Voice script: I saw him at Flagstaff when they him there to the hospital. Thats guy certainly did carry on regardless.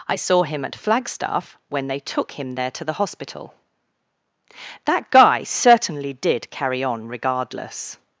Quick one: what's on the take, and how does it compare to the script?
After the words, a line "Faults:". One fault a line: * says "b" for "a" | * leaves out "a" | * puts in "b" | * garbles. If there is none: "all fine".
I saw him at Flagstaff when they took him there to the hospital. That guy certainly did carry on regardless.
Faults:
* puts in "took"
* says "That" for "Thats"